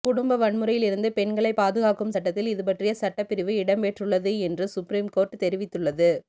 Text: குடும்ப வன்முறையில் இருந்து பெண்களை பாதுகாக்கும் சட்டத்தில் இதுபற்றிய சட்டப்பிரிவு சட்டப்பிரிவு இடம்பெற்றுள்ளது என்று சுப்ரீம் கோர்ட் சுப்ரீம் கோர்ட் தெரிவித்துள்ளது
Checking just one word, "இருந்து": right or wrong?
right